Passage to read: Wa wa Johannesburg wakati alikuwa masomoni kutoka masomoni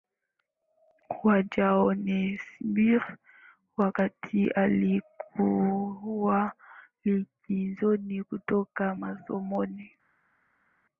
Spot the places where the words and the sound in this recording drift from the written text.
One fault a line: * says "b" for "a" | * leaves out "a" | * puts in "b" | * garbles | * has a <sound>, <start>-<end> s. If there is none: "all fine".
* leaves out "wa"
* says "likizoni" for "masomoni"